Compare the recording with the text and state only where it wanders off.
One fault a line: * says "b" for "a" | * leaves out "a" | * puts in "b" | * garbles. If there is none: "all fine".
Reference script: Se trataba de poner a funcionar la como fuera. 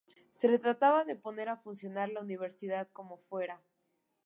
* puts in "universidad"